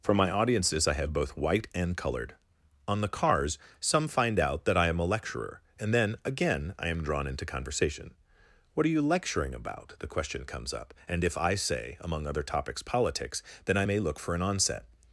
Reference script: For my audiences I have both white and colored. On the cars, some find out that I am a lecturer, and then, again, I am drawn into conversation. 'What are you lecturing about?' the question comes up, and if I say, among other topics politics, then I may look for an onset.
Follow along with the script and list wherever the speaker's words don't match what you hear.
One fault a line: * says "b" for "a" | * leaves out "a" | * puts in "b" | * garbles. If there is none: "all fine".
all fine